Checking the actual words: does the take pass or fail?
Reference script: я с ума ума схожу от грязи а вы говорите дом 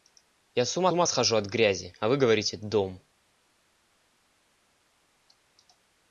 pass